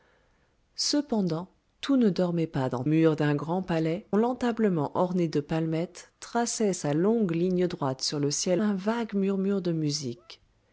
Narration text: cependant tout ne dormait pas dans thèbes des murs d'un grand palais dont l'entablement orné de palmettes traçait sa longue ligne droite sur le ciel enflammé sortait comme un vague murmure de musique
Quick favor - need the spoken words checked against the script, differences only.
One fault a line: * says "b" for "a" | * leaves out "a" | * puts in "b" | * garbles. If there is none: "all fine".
* leaves out "thèbes des"
* leaves out "dont"
* leaves out "enflammé sortait comme"